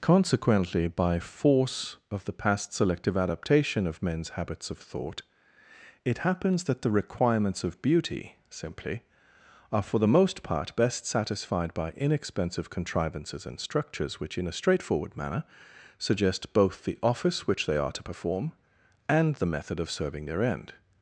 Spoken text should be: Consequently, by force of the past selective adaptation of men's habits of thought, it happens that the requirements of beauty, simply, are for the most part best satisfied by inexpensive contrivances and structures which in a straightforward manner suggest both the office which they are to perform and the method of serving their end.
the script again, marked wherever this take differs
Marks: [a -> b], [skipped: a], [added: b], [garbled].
Consequently, by force of the past selective adaptation of men's habits of thought, it happens that the requirements of beauty, simply, are for the most part best satisfied by inexpensive contrivances and structures which in a straightforward manner suggest both the office which they are to perform and the method of serving their end.